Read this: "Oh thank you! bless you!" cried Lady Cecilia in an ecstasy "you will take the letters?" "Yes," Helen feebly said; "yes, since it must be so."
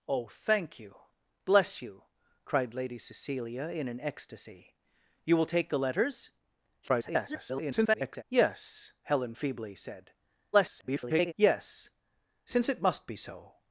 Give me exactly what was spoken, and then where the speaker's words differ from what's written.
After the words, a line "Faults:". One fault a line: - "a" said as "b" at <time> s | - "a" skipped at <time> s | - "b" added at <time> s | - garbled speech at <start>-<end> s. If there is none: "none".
"Oh thank you! bless you!" cried Lady Cecilia in an ecstasy "you will take the letters?" [garbled] "Yes," Helen feebly said; [garbled] "yes, since it must be so."
Faults:
- garbled speech at 6.8-8.2 s
- garbled speech at 10.5-11.3 s